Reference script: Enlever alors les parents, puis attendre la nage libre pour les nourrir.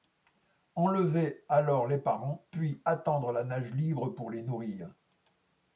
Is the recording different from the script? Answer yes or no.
no